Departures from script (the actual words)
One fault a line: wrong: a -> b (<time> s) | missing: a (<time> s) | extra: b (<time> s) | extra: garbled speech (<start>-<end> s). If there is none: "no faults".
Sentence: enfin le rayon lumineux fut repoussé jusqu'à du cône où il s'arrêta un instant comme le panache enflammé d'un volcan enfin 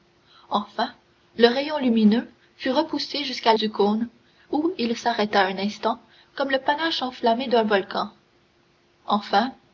no faults